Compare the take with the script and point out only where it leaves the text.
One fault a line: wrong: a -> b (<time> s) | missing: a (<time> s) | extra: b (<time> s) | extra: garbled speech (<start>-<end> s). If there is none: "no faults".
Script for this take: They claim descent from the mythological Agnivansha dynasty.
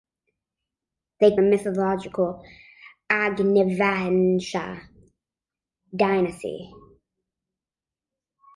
missing: claim descent from (1.4 s)